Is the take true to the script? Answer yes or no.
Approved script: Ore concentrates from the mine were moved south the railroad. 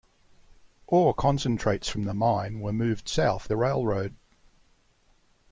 yes